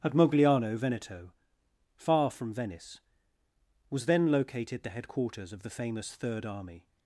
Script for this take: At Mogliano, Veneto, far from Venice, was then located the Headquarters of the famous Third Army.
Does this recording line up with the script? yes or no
yes